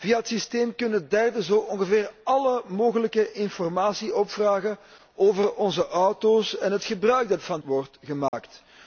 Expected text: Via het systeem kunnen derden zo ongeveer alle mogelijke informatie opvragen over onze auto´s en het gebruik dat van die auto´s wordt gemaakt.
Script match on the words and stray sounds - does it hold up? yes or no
no